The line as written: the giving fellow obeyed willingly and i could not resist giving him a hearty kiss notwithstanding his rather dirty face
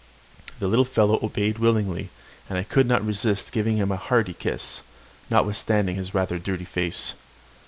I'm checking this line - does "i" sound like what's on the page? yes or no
yes